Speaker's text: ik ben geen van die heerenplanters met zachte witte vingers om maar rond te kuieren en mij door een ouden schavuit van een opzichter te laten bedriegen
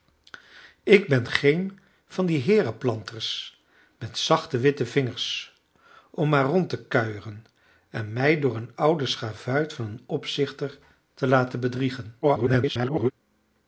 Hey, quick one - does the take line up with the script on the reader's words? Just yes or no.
no